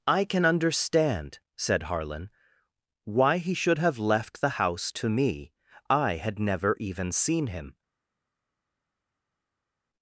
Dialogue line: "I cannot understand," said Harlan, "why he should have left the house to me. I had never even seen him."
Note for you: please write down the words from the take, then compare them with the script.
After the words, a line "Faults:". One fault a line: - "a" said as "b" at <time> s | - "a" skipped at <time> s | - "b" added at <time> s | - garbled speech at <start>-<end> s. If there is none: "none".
"I can understand," said Harlan, "why he should have left the house to me. I had never even seen him."
Faults:
- "cannot" said as "can" at 0.2 s